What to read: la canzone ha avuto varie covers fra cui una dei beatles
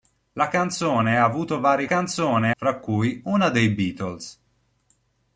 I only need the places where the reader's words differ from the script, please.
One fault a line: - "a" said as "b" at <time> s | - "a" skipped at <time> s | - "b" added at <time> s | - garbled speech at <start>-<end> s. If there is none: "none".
- "covers" said as "canzone" at 1.8 s